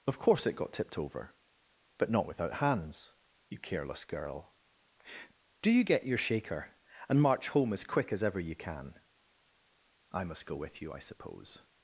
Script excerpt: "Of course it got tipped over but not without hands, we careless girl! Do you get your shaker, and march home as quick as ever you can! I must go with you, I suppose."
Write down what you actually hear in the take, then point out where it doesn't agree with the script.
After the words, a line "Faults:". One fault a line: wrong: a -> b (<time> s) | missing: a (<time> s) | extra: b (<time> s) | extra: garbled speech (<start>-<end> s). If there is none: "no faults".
"Of course it got tipped over but not without hands, you careless girl! Do you get your shaker, and march home as quick as ever you can! I must go with you, I suppose."
Faults:
wrong: we -> you (3.5 s)